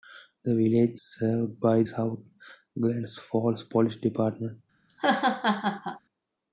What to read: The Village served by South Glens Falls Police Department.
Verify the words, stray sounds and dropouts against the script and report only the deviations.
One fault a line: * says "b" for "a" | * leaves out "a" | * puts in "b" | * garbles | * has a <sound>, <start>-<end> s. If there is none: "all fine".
* has a laugh, 4.9-6.0 s